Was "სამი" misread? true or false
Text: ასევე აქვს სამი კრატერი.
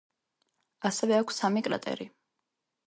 false